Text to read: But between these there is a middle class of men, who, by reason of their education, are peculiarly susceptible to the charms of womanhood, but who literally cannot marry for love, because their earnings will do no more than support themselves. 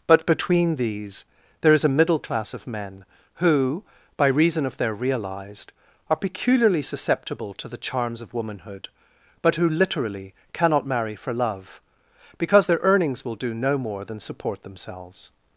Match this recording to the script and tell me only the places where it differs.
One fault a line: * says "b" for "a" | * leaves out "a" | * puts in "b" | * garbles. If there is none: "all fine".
* says "realized" for "education"